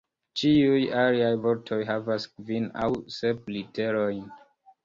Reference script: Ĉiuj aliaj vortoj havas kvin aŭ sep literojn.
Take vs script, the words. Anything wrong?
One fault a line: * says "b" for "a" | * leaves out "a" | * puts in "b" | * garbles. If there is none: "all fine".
all fine